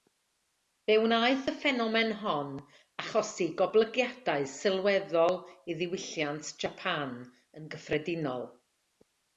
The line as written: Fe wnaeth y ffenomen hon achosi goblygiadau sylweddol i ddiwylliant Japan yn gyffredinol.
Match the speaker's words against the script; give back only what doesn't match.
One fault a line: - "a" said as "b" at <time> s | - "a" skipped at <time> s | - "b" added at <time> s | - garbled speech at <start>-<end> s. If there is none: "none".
none